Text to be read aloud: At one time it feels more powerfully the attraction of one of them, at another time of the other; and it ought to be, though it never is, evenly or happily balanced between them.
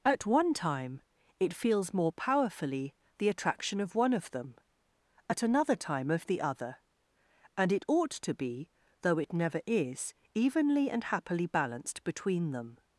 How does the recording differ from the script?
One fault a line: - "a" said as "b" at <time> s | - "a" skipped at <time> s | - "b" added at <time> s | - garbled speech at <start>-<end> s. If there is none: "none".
- "or" said as "and" at 10.9 s